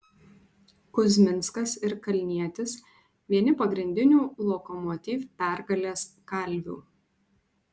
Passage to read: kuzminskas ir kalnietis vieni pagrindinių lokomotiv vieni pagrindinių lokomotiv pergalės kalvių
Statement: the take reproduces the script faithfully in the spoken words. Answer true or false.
false